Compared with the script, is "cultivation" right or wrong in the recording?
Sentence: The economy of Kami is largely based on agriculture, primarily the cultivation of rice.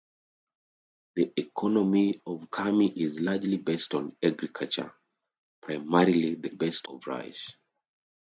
wrong